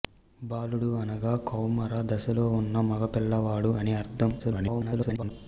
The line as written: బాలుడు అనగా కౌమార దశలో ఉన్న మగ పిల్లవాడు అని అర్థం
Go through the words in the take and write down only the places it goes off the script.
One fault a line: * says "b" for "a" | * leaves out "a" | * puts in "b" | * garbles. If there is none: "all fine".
* garbles